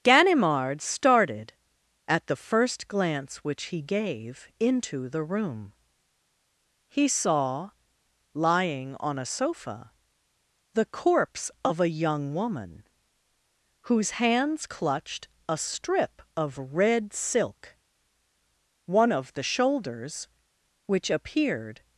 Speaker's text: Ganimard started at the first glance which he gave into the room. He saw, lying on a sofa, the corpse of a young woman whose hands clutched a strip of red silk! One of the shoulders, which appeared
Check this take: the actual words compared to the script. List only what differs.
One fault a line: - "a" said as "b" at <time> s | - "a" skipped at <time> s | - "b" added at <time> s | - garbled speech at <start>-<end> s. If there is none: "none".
none